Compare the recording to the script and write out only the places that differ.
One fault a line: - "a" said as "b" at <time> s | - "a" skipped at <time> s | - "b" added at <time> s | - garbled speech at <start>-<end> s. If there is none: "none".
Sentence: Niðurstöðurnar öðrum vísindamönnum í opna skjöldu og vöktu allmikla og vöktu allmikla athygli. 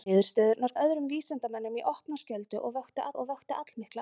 none